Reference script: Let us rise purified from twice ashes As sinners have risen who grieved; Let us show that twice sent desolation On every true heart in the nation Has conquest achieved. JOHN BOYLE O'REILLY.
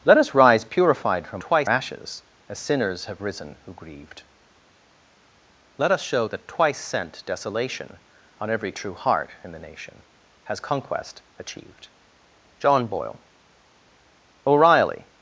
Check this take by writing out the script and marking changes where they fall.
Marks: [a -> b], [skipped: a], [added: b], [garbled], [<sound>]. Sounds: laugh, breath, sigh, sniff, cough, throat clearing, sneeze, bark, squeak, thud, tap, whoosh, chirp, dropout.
Let us rise purified from twice ashes As sinners have risen who grieved; Let us show that twice sent desolation On every true heart in the nation Has conquest achieved. JOHN BOYLE O'REILLY.